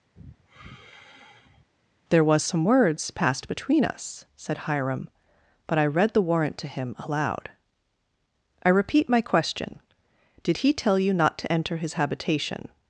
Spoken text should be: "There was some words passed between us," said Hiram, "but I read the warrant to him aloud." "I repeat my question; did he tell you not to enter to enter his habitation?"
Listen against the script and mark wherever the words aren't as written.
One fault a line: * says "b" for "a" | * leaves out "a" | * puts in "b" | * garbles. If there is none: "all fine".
* leaves out "to enter"